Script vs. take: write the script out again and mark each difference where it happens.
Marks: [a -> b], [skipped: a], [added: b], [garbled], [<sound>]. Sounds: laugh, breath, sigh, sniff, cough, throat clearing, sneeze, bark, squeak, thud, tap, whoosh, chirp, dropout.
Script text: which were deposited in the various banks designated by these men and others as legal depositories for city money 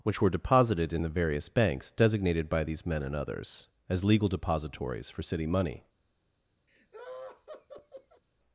which were deposited in the various banks designated by these men and others as legal depositories for city money [laugh]